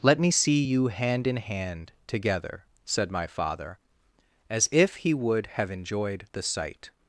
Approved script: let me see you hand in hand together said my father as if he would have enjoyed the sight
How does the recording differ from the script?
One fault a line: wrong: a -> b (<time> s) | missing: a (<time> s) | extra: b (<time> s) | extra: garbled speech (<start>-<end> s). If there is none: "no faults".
no faults